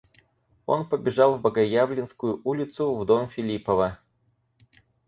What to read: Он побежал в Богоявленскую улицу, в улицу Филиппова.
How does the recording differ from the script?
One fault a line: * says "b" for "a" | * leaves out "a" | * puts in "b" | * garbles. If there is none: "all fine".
* says "дом" for "улицу"